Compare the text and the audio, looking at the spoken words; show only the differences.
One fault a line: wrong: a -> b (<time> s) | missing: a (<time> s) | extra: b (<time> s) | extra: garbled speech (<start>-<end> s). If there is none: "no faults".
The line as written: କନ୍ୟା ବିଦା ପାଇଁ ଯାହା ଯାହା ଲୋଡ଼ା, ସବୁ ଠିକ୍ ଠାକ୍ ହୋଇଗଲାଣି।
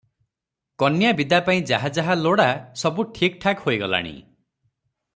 no faults